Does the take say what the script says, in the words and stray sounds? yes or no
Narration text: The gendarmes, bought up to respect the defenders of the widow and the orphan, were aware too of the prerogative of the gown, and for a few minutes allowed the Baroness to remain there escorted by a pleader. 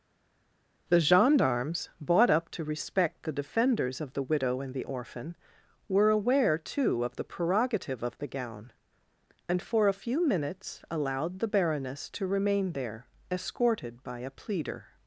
yes